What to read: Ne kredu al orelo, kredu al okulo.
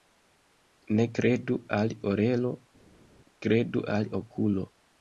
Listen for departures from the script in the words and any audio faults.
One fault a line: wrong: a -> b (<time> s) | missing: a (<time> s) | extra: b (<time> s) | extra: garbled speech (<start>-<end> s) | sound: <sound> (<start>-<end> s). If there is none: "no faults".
no faults